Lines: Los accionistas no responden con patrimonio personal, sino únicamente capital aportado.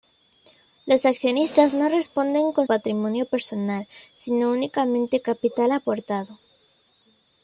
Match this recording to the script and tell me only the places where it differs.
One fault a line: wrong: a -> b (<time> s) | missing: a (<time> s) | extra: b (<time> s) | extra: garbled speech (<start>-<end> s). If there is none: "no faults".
no faults